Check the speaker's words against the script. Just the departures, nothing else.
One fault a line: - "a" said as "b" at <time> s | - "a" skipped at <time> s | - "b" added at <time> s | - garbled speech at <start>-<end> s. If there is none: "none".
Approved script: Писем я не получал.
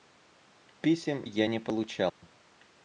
none